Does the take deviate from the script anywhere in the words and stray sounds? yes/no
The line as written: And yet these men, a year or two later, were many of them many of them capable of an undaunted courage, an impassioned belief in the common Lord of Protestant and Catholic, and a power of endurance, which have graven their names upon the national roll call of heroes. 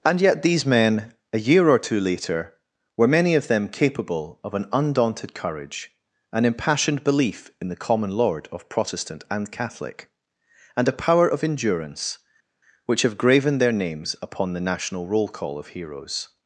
yes